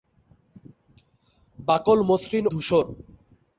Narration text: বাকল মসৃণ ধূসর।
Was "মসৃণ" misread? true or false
false